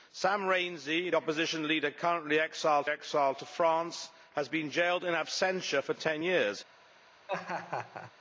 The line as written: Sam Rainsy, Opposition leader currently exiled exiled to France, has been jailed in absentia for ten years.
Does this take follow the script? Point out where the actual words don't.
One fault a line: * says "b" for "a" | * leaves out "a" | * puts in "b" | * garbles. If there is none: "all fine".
all fine